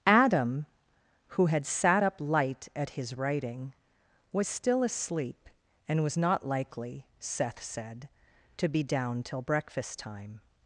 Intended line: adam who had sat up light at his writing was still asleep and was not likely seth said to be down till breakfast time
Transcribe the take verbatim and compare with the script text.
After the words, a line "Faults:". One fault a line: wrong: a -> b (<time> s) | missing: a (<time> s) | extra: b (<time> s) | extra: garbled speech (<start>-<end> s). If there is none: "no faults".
adam who had sat up light at his writing was still asleep and was not likely seth said to be down till breakfast time
Faults:
no faults